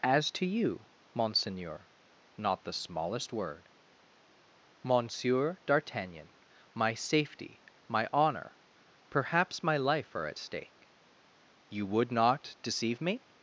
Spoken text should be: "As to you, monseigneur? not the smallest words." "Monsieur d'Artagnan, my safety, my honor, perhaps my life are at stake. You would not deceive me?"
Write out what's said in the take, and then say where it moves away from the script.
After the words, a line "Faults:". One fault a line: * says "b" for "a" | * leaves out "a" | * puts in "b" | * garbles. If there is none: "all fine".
"As to you, monseigneur? not the smallest word." "Monsieur d'Artagnan, my safety, my honor, perhaps my life are at stake. You would not deceive me?"
Faults:
* says "word" for "words"